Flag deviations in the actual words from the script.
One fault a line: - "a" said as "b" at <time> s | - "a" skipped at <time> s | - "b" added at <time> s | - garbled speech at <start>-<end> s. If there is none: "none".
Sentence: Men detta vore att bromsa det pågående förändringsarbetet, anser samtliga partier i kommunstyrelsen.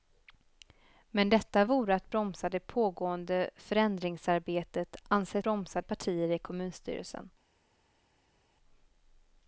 - "samtliga" said as "bromsa" at 5.4 s